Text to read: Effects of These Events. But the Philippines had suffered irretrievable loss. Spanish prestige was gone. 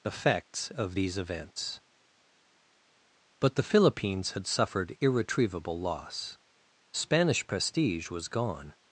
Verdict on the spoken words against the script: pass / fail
pass